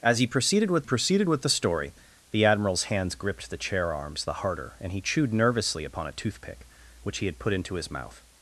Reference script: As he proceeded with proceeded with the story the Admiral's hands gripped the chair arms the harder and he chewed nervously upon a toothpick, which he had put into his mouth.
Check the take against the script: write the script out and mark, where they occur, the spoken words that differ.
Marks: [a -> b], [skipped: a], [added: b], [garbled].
As he proceeded with proceeded with the story the Admiral's hands gripped the chair arms the harder and he chewed nervously upon a toothpick, which he had put into his mouth.